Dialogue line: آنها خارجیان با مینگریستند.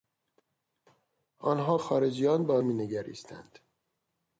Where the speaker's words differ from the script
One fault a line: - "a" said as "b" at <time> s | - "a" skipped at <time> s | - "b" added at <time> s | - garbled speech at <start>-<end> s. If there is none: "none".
none